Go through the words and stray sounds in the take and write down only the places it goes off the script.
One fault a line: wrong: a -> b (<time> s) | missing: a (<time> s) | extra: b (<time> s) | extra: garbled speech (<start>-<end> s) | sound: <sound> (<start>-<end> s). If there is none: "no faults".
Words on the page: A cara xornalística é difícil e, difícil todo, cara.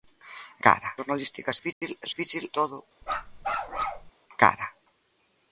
sound: dropout (1.7-1.8 s)
sound: bark (3.0-4.1 s)